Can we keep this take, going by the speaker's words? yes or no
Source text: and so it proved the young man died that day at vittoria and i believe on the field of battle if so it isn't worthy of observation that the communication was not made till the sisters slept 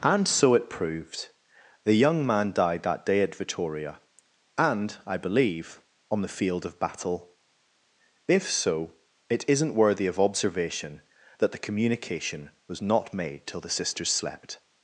yes